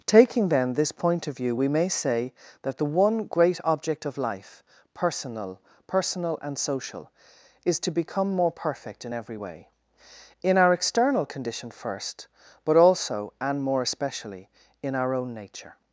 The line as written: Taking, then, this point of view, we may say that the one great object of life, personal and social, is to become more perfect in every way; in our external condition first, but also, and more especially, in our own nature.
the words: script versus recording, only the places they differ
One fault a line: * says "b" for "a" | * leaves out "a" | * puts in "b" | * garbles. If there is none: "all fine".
* puts in "personal"